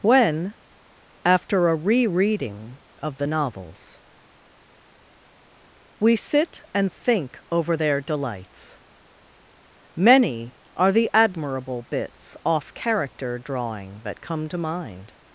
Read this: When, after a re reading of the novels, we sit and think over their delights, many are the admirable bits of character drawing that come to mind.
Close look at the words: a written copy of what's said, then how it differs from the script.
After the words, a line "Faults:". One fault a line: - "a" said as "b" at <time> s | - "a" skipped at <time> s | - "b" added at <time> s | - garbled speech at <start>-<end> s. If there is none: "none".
When, after a re reading of the novels, we sit and think over their delights, many are the admirable bits off character drawing that come to mind.
Faults:
- "of" said as "off" at 12.4 s